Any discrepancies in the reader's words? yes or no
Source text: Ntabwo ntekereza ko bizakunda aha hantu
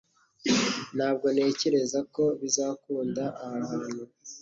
no